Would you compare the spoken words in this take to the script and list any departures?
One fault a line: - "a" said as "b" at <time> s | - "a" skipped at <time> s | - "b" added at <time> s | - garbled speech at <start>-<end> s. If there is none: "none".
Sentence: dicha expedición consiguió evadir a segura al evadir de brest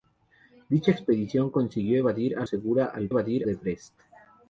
none